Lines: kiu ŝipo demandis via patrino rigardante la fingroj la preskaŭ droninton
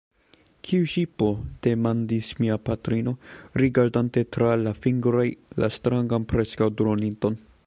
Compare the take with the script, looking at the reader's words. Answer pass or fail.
fail